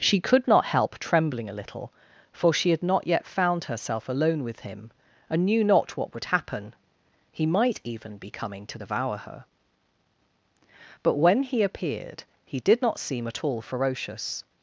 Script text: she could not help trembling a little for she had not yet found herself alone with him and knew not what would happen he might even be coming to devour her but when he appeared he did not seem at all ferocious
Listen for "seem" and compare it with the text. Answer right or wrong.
right